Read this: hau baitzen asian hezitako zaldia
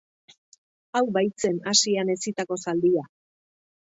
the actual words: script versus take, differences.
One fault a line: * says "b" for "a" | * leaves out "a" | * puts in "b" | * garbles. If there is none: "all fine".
all fine